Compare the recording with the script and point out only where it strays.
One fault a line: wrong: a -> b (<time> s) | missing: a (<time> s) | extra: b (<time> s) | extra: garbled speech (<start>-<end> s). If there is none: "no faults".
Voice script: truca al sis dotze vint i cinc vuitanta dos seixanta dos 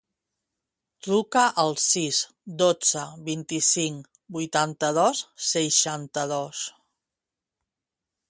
no faults